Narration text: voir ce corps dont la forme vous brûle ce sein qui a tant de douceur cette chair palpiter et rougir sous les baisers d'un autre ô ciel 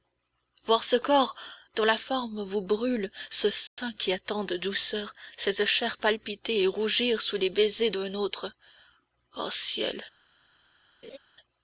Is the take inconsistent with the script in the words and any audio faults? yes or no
yes